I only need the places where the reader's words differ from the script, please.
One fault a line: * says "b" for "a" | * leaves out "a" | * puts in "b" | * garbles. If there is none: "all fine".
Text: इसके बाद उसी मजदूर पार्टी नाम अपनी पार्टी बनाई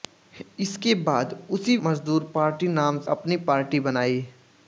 all fine